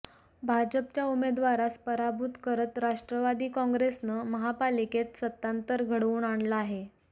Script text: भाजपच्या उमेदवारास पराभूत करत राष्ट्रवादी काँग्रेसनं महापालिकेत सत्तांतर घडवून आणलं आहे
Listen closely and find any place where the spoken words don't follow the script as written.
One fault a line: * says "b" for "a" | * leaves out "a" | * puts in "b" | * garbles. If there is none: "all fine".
all fine